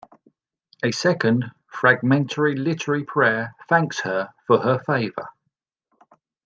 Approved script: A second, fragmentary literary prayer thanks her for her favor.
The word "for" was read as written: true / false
true